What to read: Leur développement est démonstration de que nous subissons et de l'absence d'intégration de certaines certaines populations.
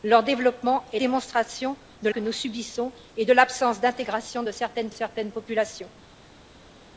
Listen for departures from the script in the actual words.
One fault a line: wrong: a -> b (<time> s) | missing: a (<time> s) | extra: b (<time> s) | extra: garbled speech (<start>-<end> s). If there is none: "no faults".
no faults